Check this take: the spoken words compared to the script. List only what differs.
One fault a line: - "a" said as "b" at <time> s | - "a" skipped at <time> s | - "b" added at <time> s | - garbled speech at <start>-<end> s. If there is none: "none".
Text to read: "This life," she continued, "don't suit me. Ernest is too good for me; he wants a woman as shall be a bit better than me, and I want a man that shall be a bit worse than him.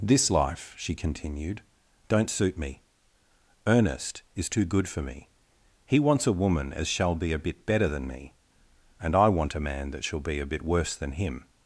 none